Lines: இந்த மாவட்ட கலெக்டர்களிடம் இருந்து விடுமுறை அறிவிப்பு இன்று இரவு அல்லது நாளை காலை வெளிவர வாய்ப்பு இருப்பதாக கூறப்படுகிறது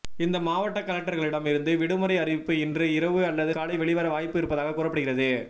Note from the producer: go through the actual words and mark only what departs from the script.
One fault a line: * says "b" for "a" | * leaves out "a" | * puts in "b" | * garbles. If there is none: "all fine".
* leaves out "நாளை"